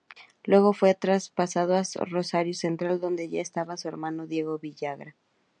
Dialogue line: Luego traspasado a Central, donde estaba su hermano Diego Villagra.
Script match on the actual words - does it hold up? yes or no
no